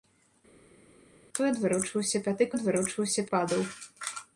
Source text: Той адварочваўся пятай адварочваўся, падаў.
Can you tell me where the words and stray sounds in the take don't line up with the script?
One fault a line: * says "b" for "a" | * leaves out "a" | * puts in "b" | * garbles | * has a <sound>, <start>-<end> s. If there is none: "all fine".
all fine